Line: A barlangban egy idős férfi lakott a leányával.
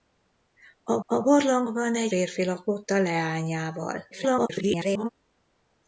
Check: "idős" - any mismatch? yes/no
yes